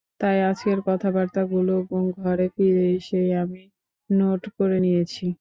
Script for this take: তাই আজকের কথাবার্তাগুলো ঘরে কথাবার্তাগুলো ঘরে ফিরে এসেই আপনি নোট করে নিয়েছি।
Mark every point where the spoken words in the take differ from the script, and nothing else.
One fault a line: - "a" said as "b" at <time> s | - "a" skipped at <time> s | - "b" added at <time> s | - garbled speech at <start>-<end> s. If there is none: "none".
- "কথাবার্তাগুলো ঘরে" skipped at 2.5 s
- "আপনি" said as "আমি" at 3.4 s